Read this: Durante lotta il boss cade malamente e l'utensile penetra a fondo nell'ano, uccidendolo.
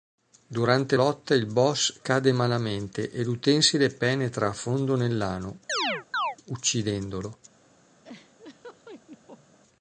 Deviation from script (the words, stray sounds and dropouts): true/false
true